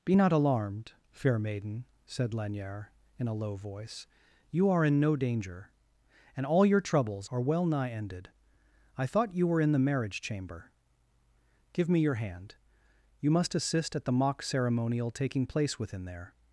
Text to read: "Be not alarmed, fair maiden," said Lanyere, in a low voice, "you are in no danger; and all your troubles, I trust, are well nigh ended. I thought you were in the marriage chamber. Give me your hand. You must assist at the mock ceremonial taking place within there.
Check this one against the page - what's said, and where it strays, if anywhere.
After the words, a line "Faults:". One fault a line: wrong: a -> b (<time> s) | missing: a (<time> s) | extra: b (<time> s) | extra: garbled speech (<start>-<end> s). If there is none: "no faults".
"Be not alarmed, fair maiden," said Lanyere, in a low voice, "you are in no danger; and all your troubles, are well nigh ended. I thought you were in the marriage chamber. Give me your hand. You must assist at the mock ceremonial taking place within there.
Faults:
missing: I trust (7.3 s)